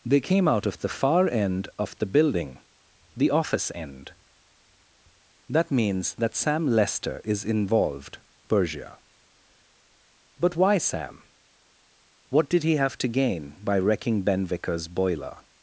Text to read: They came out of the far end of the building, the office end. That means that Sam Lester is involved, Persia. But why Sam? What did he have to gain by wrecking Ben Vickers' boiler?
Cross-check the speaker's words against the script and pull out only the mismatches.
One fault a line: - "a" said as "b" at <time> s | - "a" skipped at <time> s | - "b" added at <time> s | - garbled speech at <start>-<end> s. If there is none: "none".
none